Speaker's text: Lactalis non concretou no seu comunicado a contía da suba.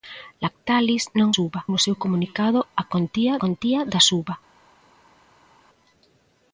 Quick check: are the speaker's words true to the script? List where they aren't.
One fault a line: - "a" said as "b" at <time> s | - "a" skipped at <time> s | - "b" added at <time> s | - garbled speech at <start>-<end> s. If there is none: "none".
- "concretou" said as "suba" at 1.3 s
- "contía" added at 3.4 s